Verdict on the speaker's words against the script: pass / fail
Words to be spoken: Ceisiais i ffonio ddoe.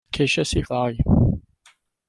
fail